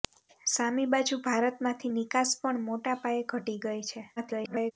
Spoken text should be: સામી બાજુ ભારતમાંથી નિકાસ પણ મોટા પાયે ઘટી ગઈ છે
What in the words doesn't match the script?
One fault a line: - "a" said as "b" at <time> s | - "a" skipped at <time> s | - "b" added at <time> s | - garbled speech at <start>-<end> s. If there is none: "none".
- garbled speech at 4.2-4.7 s